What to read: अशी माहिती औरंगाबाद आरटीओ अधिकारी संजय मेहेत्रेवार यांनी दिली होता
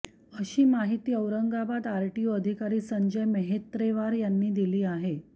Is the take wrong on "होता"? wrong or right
wrong